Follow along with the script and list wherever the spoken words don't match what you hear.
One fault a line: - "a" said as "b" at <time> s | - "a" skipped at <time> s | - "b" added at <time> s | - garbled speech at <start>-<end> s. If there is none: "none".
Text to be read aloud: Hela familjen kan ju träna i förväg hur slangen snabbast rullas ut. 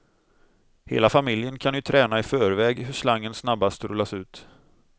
none